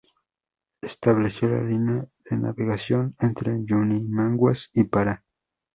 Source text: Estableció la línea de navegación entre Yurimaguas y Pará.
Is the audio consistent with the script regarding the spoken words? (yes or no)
yes